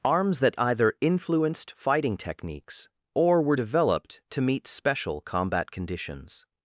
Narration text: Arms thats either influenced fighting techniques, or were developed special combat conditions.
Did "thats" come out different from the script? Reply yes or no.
yes